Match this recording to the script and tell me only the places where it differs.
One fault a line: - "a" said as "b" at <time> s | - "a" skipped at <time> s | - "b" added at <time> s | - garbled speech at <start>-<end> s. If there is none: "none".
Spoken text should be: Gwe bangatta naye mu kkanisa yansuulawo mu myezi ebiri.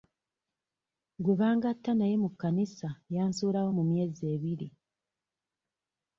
none